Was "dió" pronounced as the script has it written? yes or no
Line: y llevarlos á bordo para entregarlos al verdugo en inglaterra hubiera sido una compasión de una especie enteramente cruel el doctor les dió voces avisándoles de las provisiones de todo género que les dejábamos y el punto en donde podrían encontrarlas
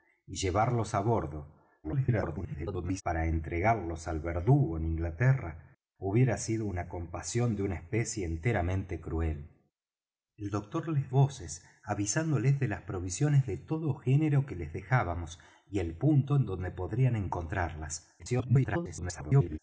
no